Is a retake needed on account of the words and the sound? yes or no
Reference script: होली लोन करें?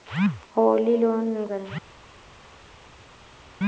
no